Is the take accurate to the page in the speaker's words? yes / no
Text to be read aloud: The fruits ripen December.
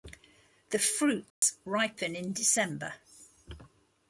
no